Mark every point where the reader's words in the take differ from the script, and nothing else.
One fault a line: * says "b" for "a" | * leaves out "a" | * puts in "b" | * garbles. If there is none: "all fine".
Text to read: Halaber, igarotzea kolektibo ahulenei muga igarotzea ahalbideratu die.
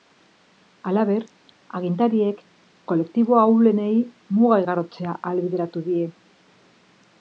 * says "agintariek" for "igarotzea"